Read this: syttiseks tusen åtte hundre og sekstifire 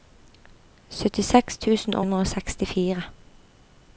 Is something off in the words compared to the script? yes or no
yes